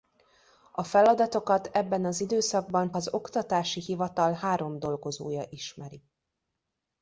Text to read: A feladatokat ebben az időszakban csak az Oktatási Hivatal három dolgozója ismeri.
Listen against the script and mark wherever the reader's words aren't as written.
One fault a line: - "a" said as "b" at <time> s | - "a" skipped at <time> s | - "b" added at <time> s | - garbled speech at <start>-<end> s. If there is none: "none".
- "csak" skipped at 2.9 s